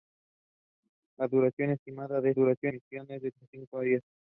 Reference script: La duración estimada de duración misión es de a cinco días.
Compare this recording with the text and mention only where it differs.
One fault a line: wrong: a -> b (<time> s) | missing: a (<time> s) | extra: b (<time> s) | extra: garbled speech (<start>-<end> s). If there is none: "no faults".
no faults